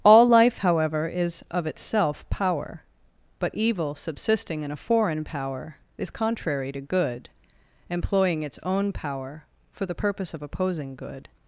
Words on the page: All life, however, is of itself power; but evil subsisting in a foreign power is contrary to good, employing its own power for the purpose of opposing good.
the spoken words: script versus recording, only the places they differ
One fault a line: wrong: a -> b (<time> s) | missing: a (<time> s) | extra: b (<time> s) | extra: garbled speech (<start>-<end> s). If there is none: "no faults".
no faults